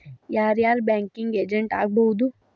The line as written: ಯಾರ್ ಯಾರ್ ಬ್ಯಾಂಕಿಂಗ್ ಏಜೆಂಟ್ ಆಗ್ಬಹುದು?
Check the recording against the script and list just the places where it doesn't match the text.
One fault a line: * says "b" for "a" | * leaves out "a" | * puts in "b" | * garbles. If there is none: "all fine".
all fine